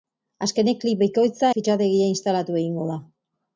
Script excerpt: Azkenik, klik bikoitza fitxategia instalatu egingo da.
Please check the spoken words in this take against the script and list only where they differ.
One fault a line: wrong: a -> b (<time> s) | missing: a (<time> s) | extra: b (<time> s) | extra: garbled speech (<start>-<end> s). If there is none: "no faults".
no faults